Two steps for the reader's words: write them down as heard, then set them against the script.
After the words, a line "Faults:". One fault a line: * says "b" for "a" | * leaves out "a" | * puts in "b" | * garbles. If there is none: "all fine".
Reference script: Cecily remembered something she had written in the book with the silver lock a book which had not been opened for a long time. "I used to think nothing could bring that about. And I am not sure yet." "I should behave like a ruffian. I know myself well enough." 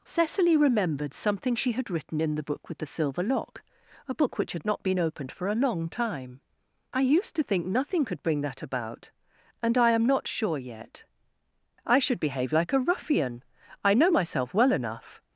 Cecily remembered something she had written in the book with the silver lock a book which had not been opened for a long time. "I used to think nothing could bring that about. And I am not sure yet." "I should behave like a ruffian. I know myself well enough."
Faults:
all fine